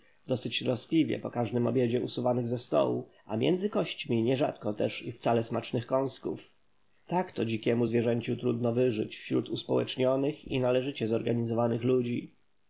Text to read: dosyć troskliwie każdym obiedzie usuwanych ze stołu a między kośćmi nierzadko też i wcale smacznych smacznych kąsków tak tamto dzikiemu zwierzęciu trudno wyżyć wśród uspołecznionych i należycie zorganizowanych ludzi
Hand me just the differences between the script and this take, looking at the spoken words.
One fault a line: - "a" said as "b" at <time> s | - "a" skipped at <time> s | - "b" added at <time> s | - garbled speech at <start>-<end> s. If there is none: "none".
- "po" added at 1.2 s
- "smacznych" skipped at 5.9 s
- "tamto" said as "to" at 7.3 s